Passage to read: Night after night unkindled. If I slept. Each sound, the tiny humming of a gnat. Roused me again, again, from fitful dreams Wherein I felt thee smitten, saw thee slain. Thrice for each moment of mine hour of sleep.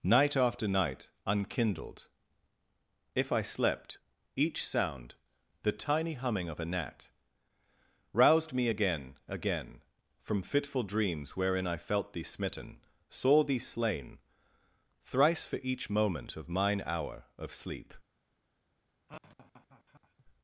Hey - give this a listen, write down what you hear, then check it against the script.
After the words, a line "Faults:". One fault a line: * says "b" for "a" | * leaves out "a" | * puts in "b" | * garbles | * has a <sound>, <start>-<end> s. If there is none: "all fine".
Night after night unkindled. If I slept. Each sound, the tiny humming of a gnat. Roused me again, again, from fitful dreams Wherein I felt thee smitten, saw thee slain. Thrice for each moment of mine hour of sleep.
Faults:
* has a laugh, 19.1-20.3 s